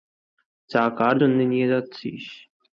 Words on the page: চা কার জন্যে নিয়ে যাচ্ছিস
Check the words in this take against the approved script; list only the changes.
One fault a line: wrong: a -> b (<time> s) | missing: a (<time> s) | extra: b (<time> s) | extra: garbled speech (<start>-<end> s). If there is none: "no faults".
no faults